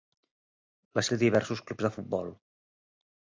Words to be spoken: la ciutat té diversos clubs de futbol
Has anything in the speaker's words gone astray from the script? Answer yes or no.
yes